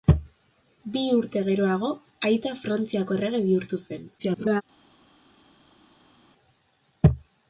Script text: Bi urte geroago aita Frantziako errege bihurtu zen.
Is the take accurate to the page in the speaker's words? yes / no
no